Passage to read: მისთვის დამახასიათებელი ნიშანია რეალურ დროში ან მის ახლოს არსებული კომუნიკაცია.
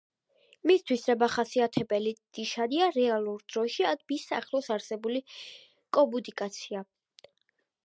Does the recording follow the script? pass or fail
pass